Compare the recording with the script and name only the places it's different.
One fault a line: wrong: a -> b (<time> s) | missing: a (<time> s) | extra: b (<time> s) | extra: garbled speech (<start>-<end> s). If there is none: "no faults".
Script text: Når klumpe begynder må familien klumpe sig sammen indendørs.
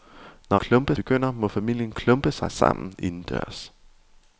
no faults